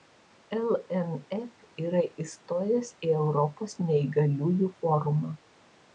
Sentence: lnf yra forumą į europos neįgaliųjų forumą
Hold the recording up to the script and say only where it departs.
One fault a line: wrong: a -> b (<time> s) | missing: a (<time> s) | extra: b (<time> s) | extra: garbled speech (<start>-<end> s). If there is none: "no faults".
wrong: forumą -> įstojęs (2.2 s)